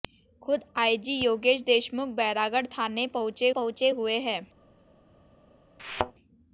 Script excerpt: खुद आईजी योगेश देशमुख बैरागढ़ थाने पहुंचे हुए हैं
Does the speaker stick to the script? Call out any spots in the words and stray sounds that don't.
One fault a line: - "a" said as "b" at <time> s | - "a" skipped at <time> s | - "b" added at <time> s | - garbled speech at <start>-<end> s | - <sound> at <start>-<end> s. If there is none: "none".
- "पहुंचे" added at 3.5 s
- thud at 5.8-6.1 s